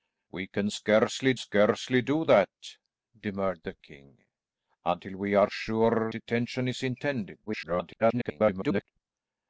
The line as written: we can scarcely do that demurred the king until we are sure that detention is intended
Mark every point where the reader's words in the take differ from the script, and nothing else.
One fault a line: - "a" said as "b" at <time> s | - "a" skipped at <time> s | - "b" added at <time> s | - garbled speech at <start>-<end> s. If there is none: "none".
- "scarcely" added at 1.4 s
- "that" skipped at 6.1 s
- garbled speech at 7.5-8.8 s